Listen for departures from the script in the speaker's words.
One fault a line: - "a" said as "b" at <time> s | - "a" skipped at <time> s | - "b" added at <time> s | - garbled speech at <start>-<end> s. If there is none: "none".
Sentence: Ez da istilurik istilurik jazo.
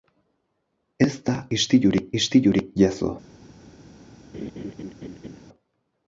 none